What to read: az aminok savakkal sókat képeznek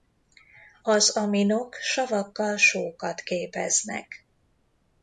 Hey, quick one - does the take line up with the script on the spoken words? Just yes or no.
yes